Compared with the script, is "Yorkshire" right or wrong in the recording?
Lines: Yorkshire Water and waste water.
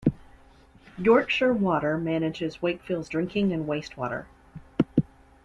right